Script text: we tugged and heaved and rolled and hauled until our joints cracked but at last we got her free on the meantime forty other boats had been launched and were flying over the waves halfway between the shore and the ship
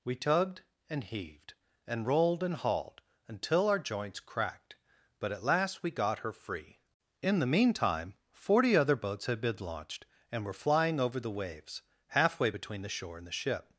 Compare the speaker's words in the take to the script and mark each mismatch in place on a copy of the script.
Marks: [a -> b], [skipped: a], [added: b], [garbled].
we tugged and heaved and rolled and hauled until our joints cracked but at last we got her free [on -> in] the meantime forty other boats had been launched and were flying over the waves halfway between the shore and the ship